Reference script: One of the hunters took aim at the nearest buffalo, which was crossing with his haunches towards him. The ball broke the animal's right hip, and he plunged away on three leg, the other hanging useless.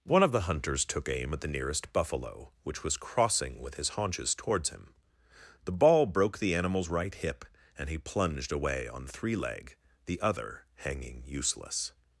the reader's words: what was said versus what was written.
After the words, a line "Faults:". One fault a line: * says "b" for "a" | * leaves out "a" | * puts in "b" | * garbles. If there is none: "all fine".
One of the hunters took aim at the nearest buffalo, which was crossing with his haunches towards him. The ball broke the animal's right hip, and he plunged away on three leg, the other hanging useless.
Faults:
all fine